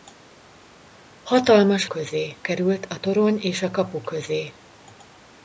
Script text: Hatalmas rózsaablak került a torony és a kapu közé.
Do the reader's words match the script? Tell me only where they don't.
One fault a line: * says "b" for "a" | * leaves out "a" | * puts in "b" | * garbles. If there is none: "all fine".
* says "közé" for "rózsaablak"